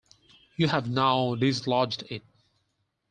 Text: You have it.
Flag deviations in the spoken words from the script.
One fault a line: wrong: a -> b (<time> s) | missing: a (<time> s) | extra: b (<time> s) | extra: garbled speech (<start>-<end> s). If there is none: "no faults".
extra: now dislodged (0.9 s)